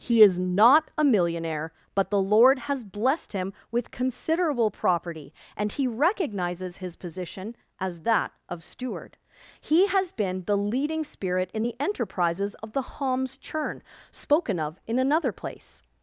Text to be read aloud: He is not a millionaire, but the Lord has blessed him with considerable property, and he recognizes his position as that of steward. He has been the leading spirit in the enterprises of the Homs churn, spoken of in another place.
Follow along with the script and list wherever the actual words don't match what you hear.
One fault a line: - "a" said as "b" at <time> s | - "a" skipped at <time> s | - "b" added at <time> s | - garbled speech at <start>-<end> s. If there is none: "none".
none